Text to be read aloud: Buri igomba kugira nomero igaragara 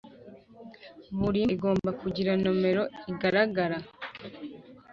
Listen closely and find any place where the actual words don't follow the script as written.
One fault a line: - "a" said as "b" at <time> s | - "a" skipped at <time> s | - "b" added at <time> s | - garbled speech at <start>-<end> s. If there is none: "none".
none